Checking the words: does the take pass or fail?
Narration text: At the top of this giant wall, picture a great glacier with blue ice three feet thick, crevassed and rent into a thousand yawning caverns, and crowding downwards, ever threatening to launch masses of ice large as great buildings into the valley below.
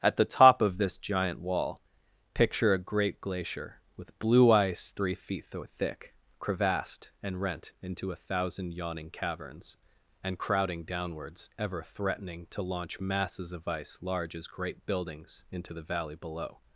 pass